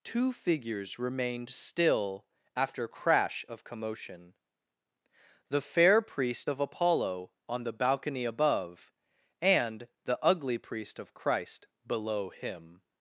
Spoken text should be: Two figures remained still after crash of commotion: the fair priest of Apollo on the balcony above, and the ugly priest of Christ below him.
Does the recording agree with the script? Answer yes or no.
yes